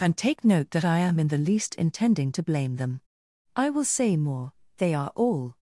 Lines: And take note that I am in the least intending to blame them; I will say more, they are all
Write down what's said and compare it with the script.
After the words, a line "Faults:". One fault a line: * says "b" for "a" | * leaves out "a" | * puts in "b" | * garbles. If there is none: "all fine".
And take note that I am in the least intending to blame them; I will say more, they are all
Faults:
all fine